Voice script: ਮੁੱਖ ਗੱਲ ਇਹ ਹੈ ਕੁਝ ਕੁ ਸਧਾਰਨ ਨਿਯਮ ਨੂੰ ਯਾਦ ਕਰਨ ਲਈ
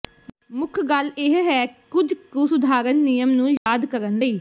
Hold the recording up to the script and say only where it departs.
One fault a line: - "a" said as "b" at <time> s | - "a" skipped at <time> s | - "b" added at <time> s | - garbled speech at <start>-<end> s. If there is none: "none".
none